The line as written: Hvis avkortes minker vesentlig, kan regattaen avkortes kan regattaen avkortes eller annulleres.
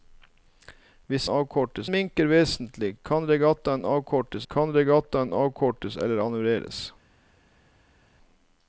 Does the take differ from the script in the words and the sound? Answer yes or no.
no